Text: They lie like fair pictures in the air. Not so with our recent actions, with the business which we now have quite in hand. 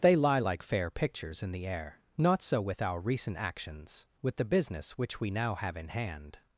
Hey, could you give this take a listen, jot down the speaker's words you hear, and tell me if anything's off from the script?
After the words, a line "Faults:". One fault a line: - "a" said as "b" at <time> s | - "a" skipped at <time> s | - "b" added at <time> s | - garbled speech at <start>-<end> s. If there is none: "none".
They lie like fair pictures in the air. Not so with our recent actions, with the business which we now have in hand.
Faults:
- "quite" skipped at 5.7 s